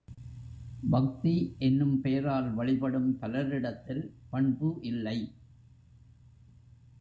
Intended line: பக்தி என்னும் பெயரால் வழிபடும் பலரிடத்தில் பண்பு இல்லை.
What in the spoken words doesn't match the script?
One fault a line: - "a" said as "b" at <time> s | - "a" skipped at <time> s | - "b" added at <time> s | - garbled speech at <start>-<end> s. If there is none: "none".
none